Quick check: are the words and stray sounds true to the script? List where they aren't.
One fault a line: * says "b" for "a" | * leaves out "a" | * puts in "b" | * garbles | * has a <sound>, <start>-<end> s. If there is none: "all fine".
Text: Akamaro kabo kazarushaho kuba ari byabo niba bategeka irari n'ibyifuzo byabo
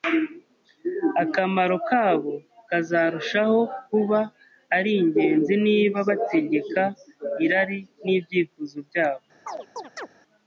* says "ingenzi" for "byabo"
* has a chirp, 9.5-10.1 s